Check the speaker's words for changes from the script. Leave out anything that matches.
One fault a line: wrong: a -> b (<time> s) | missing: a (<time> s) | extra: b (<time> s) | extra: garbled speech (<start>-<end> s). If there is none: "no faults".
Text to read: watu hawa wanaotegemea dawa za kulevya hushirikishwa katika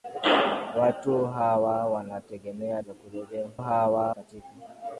missing: dawa (2.8 s)
wrong: hushirikishwa -> hawa (3.6 s)